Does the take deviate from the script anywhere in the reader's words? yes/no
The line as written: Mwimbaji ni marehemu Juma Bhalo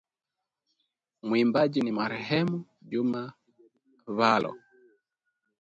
no